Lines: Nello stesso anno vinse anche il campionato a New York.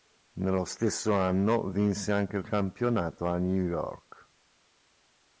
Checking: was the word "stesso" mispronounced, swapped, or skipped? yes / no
no